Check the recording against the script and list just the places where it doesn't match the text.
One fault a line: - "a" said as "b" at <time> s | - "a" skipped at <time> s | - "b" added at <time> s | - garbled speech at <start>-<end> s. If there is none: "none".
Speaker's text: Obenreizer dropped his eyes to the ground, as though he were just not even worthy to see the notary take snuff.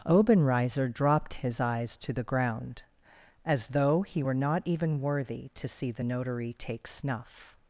- "just" skipped at 4.3 s